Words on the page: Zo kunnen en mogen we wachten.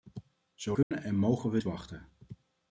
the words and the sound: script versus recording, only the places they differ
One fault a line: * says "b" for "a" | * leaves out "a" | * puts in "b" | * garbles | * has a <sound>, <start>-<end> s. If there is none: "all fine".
* has a dropout, 0.8-0.9 s